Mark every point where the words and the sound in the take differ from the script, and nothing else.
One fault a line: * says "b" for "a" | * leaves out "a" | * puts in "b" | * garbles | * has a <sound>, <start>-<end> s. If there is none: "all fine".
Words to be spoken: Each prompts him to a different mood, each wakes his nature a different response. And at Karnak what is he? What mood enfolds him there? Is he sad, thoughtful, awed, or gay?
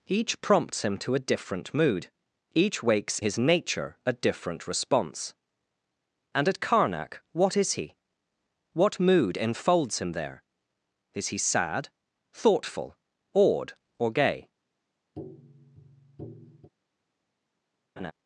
* has a tap, 15.1-16.7 s
* has a laugh, 18.0-18.1 s